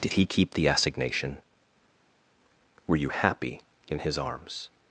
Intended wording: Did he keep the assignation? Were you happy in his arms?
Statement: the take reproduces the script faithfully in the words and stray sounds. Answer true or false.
true